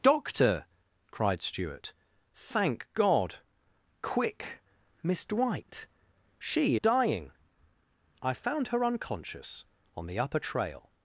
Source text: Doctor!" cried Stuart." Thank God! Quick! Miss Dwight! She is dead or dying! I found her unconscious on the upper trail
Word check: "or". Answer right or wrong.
wrong